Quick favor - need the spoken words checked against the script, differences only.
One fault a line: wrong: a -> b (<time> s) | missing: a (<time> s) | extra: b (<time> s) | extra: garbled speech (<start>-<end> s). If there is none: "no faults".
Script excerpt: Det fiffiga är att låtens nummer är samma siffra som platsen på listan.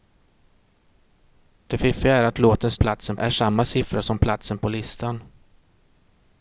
wrong: nummer -> platsen (2.8 s)